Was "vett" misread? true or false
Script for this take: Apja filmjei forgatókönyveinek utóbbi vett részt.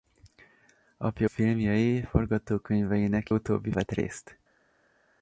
false